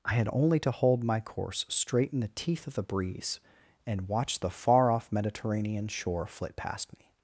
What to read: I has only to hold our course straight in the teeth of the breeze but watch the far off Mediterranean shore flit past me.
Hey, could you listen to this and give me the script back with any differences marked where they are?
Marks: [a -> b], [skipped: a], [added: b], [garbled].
I [has -> had] only to hold [our -> my] course straight in the teeth of the breeze [but -> and] watch the far off Mediterranean shore flit past me.